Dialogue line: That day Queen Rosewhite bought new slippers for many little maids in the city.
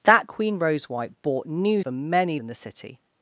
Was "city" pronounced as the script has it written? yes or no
yes